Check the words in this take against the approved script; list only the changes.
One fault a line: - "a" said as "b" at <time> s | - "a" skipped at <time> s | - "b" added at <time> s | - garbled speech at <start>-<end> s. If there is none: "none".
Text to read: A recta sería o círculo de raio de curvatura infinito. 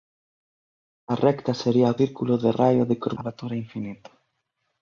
none